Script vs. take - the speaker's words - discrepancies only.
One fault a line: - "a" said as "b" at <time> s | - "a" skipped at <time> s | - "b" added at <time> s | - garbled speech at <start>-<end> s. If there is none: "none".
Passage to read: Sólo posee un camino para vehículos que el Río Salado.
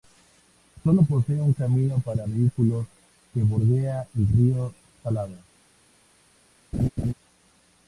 - "bordea" added at 3.4 s